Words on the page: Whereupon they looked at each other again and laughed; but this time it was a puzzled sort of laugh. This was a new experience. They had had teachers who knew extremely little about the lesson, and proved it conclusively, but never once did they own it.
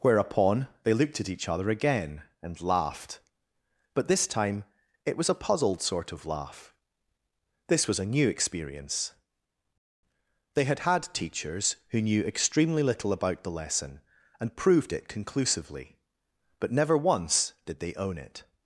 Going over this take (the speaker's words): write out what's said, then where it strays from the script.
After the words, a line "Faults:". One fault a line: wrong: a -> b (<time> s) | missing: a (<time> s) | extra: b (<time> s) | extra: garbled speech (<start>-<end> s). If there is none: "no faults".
Whereupon they looked at each other again and laughed; but this time it was a puzzled sort of laugh. This was a new experience. They had had teachers who knew extremely little about the lesson, and proved it conclusively, but never once did they own it.
Faults:
no faults